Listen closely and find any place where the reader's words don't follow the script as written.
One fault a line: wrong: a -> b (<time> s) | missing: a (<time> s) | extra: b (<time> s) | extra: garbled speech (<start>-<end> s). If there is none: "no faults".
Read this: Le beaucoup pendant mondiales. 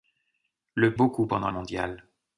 no faults